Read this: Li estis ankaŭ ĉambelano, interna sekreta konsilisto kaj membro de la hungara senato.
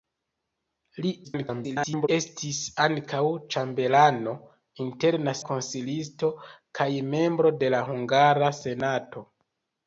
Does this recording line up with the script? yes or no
no